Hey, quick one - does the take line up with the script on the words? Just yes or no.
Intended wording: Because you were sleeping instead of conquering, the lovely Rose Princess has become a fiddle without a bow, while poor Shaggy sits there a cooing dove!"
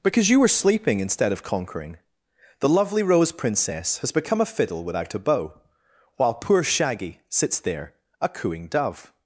yes